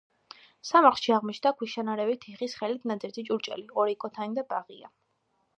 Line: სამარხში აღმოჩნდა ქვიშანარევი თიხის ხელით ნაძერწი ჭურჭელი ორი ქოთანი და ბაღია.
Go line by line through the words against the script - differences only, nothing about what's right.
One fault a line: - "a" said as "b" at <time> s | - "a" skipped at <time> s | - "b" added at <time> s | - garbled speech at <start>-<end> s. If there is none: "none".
none